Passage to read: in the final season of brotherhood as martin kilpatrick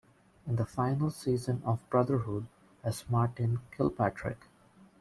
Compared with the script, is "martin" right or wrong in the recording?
right